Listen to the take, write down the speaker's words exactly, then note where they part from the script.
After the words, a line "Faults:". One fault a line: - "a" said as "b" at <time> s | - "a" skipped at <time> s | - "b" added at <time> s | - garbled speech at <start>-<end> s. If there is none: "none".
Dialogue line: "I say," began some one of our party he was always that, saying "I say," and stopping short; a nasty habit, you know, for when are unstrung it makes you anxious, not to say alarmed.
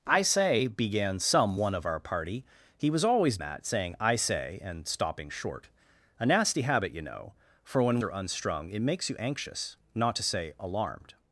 "I say," began some one of our party he was always that, saying "I say," and stopping short; a nasty habit, you know, for when are unstrung it makes you anxious, not to say alarmed.
Faults:
none